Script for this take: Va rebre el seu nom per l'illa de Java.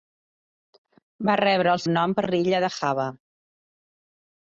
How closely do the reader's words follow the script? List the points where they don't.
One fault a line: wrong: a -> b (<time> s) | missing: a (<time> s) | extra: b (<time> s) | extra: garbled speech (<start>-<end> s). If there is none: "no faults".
missing: seu (1.8 s)